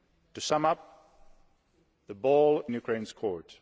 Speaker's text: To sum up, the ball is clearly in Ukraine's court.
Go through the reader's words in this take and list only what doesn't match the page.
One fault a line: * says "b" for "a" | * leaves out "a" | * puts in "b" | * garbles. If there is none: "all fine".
* leaves out "is clearly"